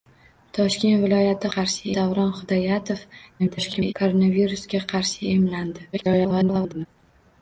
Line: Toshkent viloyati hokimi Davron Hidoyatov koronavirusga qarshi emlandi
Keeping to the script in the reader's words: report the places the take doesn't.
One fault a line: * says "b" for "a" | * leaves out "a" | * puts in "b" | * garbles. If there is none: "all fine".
* says "qarshi" for "hokimi"
* garbles
* garbles